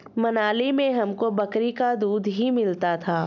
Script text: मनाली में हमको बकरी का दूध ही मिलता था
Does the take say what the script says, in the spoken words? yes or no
yes